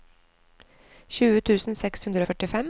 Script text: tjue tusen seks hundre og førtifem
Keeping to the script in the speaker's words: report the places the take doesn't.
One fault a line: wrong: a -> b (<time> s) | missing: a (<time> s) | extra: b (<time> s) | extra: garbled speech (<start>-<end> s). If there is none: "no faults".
no faults